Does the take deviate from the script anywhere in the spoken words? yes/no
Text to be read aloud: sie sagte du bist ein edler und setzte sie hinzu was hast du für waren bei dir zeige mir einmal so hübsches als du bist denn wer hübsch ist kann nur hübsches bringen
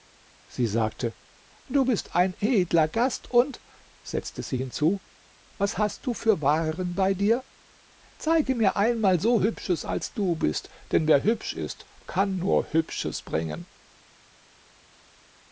yes